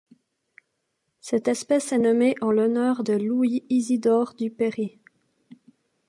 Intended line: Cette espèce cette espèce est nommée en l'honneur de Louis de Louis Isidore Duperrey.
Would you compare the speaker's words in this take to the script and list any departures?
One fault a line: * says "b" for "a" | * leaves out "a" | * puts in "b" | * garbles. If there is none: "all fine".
* leaves out "cette espèce"
* leaves out "de Louis"